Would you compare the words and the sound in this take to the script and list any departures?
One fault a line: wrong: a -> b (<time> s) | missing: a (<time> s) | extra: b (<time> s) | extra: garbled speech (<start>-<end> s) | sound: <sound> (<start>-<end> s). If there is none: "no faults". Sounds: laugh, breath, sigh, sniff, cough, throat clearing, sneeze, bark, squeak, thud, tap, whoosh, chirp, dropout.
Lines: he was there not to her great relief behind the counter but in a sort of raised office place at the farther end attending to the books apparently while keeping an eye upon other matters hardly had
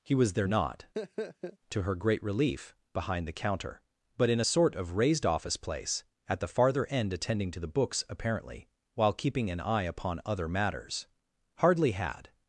sound: laugh (0.9-1.6 s)